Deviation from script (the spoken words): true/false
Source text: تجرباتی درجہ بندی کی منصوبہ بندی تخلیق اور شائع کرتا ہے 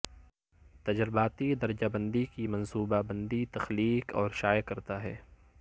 false